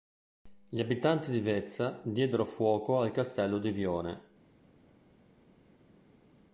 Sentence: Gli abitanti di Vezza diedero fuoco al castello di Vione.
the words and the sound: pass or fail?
pass